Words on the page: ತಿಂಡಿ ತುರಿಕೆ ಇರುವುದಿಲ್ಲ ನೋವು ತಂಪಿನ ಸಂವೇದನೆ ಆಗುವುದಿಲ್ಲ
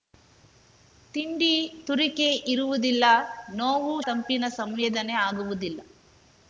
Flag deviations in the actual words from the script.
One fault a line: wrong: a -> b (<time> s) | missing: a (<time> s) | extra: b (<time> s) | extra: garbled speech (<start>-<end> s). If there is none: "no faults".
no faults